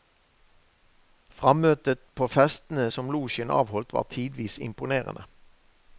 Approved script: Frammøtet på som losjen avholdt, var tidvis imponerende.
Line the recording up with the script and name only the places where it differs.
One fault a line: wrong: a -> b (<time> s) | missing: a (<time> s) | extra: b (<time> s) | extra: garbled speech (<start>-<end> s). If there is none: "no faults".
extra: festene (2.3 s)